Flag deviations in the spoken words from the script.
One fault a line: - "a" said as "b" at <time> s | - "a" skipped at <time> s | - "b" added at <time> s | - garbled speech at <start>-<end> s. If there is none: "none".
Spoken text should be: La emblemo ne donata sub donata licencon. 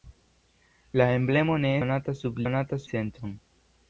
none